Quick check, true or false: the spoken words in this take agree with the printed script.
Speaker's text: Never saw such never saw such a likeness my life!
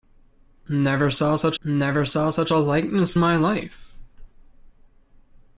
true